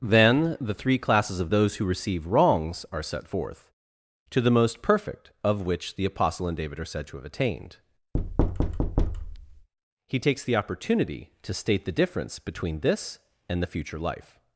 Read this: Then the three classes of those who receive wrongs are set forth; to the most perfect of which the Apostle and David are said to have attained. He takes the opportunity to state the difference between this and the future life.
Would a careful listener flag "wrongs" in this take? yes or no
no